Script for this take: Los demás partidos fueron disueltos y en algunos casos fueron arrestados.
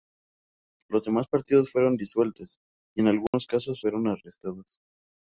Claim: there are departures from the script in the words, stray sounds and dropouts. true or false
true